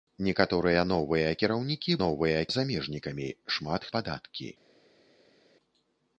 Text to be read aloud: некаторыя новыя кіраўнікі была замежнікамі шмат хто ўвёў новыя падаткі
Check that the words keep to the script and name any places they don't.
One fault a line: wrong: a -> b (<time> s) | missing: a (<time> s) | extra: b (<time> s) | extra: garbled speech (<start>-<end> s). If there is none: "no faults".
wrong: была -> новыя (2.0 s)
missing: хто ўвёў новыя (3.9 s)